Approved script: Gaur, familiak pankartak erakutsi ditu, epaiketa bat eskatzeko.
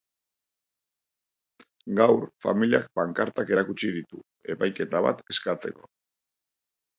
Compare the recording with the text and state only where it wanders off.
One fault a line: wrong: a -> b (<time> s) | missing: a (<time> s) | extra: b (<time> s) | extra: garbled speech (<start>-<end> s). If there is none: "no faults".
no faults